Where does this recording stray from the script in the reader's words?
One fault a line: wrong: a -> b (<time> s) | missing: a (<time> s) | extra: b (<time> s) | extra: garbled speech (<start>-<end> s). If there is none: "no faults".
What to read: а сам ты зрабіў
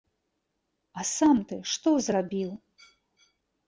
extra: што (1.8 s)